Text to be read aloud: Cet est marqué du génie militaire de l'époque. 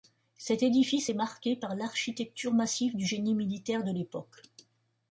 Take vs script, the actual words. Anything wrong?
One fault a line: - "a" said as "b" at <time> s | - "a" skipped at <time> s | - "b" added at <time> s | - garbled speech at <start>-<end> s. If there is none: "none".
- "édifice" added at 0.6 s
- "par l'architecture massive" added at 1.6 s